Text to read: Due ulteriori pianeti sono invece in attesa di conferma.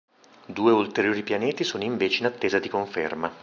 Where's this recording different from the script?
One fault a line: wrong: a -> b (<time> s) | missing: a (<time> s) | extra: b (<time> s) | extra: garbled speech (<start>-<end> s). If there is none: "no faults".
no faults